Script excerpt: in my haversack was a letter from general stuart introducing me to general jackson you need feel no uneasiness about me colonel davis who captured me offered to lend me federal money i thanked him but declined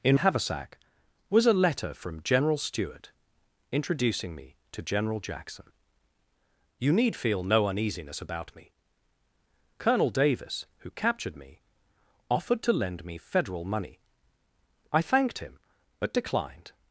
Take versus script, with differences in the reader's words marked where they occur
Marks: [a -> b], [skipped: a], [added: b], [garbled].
in [skipped: my] haversack was a letter from general stuart introducing me to general jackson you need feel no uneasiness about me colonel davis who captured me offered to lend me federal money i thanked him but declined